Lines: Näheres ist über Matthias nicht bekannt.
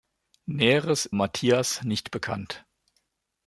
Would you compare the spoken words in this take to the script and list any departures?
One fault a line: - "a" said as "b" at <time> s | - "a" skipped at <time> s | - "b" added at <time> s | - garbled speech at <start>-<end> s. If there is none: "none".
- "ist über" skipped at 1.1 s